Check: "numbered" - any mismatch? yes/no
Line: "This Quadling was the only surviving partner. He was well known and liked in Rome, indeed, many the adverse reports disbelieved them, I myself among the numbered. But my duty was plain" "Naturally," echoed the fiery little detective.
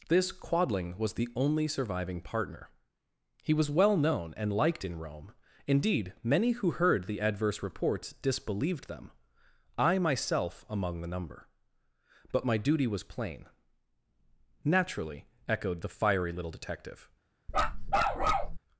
yes